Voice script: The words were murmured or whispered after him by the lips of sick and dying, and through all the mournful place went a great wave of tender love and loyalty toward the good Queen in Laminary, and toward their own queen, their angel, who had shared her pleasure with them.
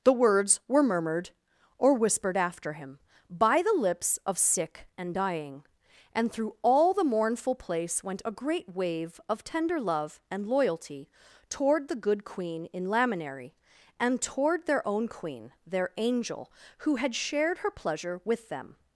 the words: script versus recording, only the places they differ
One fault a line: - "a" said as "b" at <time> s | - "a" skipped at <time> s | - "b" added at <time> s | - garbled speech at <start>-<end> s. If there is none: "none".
none